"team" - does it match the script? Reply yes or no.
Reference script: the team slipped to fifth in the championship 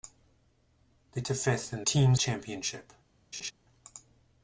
no